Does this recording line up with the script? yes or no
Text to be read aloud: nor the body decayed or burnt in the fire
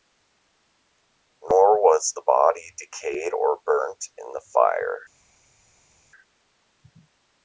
no